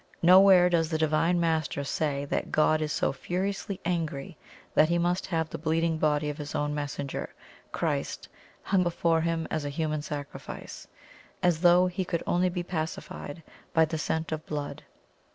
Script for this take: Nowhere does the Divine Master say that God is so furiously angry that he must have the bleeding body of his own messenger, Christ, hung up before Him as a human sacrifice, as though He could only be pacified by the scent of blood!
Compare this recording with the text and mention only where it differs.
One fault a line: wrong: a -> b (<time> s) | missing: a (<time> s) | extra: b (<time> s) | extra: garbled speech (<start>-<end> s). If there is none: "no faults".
missing: up (8.8 s)